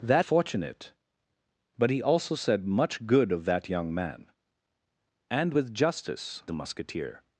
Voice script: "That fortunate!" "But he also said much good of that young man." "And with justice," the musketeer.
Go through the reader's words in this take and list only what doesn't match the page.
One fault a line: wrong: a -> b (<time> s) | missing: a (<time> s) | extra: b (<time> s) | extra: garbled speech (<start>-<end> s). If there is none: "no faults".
no faults